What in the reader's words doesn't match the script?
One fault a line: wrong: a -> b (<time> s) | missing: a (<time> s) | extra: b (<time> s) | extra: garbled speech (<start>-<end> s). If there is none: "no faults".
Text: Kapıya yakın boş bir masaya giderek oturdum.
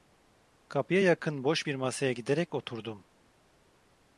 no faults